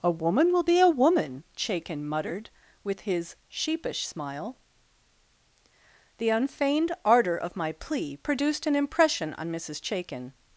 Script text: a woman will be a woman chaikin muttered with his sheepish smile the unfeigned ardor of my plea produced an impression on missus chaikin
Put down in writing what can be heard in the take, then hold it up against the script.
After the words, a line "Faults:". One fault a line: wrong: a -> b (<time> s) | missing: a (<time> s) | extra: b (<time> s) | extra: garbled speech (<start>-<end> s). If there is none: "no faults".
a woman will be a woman chaikin muttered with his sheepish smile the unfeigned ardor of my plea produced an impression on missus chaikin
Faults:
no faults